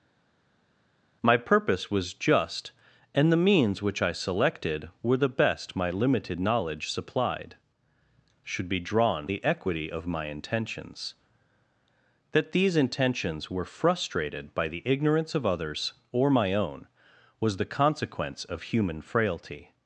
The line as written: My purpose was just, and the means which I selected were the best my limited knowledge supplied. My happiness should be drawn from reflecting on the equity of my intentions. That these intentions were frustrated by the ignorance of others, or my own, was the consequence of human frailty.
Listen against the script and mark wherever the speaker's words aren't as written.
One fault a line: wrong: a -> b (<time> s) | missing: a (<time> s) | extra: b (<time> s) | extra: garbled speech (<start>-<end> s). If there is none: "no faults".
missing: My happiness (7.6 s)
missing: from reflecting on (9.3 s)